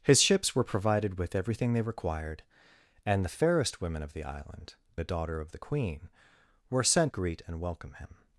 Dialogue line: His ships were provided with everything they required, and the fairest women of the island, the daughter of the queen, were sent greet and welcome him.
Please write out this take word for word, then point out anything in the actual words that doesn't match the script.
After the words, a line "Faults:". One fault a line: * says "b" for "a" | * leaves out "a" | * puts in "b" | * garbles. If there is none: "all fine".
His ships were provided with everything they required, and the fairest women of the island, the daughter of the queen, were sent greet and welcome him.
Faults:
all fine